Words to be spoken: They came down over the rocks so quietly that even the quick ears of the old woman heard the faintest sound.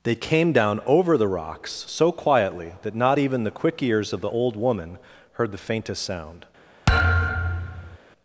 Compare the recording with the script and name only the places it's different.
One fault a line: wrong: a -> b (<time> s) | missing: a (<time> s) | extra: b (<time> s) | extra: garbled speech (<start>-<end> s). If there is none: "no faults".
extra: not (3.0 s)